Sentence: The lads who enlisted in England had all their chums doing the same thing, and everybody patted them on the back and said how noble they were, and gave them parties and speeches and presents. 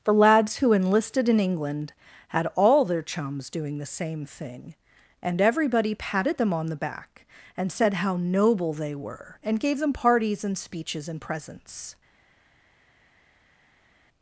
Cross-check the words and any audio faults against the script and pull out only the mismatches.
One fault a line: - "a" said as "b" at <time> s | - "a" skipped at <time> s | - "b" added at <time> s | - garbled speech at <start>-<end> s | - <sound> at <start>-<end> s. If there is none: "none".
none